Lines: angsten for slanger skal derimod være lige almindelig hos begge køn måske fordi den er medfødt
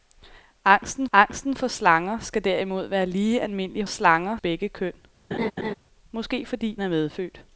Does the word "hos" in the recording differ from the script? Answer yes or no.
yes